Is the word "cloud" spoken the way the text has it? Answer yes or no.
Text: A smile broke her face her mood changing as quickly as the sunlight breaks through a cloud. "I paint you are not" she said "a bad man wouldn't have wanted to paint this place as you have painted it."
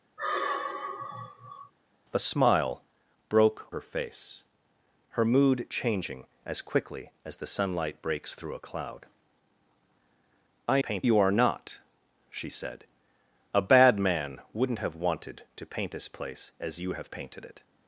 yes